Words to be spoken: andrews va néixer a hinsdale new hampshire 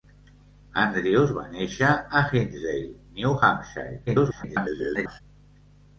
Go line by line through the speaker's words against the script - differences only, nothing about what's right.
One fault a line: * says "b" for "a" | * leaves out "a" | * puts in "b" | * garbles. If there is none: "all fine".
* garbles